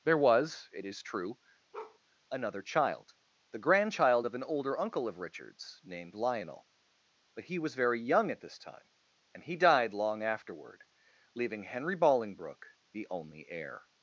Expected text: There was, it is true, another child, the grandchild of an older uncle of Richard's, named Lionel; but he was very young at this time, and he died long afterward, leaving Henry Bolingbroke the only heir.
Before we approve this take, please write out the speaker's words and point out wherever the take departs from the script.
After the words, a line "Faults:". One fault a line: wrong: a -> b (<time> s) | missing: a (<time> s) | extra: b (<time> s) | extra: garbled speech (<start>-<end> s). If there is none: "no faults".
There was, it is true, another child, the grandchild of an older uncle of Richard's, named Lionel; but he was very young at this time, and he died long afterward, leaving Henry Bolingbroke the only heir.
Faults:
no faults